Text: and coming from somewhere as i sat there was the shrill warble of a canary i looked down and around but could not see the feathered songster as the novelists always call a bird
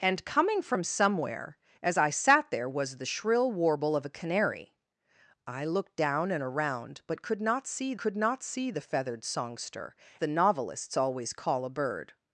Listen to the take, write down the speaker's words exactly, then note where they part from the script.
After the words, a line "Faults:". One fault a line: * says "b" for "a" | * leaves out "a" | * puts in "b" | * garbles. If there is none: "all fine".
and coming from somewhere as i sat there was the shrill warble of a canary i looked down and around but could not see could not see the feathered songster the novelists always call a bird
Faults:
* puts in "could not see"
* leaves out "as"